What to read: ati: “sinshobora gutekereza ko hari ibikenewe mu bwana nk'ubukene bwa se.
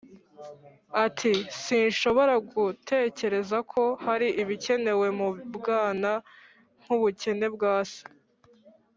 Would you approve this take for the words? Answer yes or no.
yes